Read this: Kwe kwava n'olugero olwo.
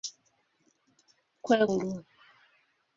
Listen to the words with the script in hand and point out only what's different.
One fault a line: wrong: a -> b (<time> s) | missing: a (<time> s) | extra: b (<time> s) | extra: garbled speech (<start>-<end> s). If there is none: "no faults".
missing: kwava n'olugero (1.6 s)